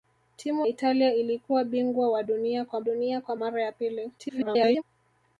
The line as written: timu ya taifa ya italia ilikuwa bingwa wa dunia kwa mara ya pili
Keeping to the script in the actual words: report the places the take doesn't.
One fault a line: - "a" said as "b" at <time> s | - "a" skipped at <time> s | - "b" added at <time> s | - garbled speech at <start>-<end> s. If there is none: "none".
- "ya taifa ya" skipped at 0.7 s
- "dunia kwa" added at 2.8 s
- garbled speech at 4.2-4.8 s